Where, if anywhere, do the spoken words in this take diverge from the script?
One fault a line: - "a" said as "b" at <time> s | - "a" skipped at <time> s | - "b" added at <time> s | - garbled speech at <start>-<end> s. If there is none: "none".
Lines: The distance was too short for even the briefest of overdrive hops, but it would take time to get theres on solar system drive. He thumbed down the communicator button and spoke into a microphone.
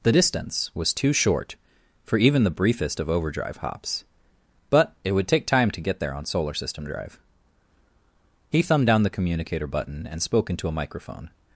- "theres" said as "there" at 6.0 s